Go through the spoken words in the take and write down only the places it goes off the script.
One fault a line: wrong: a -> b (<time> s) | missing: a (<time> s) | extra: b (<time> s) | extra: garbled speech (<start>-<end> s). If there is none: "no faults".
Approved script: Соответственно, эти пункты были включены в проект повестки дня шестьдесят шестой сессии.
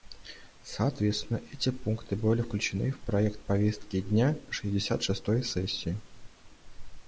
no faults